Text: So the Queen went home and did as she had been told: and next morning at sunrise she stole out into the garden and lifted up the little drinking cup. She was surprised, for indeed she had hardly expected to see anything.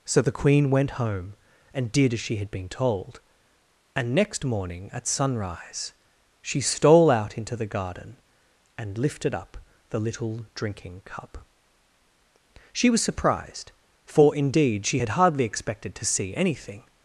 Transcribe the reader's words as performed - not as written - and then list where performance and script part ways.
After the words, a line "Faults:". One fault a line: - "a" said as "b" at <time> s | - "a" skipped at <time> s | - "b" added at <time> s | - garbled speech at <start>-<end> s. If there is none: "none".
So the Queen went home and did as she had been told: and next morning at sunrise she stole out into the garden and lifted up the little drinking cup. She was surprised, for indeed she had hardly expected to see anything.
Faults:
none